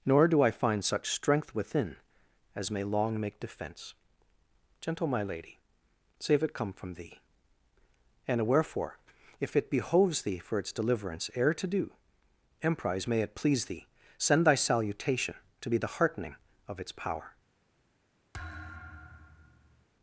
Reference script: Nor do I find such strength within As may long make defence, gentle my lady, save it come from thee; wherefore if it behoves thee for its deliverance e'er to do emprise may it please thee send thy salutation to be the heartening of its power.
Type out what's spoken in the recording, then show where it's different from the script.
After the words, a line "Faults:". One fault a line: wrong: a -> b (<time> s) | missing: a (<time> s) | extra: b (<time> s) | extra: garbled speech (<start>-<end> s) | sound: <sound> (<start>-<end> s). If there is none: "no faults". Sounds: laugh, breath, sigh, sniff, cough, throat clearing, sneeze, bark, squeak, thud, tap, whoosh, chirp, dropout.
Nor do I find such strength within As may long make defence, gentle my lady, save it come from thee; and wherefore if it behoves thee for its deliverance e'er to do emprise may it please thee send thy salutation to be the heartening of its power.
Faults:
extra: and (8.3 s)
sound: thud (18.3-19.9 s)